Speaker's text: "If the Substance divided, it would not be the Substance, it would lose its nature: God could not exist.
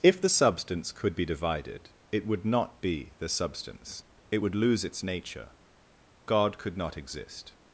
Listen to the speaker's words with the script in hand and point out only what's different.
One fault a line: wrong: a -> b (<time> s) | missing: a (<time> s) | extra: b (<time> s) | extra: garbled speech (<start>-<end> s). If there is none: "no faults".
extra: could be (0.9 s)